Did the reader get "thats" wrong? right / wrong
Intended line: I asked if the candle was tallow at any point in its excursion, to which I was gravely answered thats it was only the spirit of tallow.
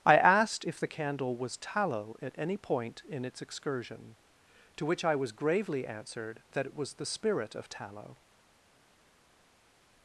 wrong